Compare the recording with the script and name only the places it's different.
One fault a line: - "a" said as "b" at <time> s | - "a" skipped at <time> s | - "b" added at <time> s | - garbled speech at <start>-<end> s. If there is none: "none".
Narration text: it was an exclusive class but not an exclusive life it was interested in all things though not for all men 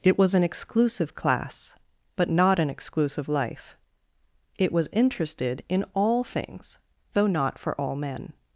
none